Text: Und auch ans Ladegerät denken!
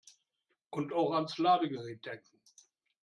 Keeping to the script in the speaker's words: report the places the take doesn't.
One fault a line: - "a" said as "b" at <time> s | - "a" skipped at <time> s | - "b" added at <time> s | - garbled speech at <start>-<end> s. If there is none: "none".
none